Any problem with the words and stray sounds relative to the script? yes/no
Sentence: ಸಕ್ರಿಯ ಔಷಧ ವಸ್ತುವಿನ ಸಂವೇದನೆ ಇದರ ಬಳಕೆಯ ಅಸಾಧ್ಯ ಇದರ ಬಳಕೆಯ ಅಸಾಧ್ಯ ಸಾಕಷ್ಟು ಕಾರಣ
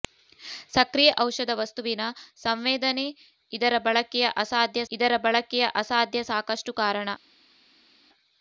no